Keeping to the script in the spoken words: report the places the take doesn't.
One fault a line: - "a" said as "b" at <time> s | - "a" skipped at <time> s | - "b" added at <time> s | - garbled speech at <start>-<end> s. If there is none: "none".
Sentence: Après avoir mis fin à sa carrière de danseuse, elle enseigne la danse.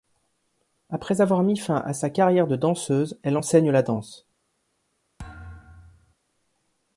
none